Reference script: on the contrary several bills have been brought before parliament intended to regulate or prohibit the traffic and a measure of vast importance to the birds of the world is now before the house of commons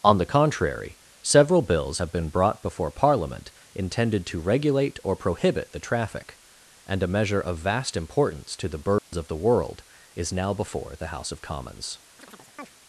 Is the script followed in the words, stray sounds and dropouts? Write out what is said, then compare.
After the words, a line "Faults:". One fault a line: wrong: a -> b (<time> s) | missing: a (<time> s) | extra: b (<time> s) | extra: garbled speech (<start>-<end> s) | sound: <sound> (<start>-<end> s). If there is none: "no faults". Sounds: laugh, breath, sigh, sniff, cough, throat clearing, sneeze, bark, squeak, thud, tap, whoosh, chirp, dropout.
on the contrary several bills have been brought before parliament intended to regulate or prohibit the traffic and a measure of vast importance to the birds of the world is now before the house of commons
Faults:
sound: dropout (9.0-9.1 s)
sound: chirp (12.2-12.7 s)